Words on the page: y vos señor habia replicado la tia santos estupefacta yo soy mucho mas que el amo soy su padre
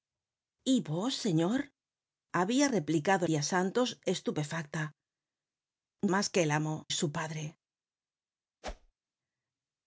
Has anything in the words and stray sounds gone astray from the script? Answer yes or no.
yes